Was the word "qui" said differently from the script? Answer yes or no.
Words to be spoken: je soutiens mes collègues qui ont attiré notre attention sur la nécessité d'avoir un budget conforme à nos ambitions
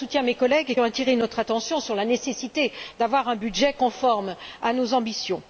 yes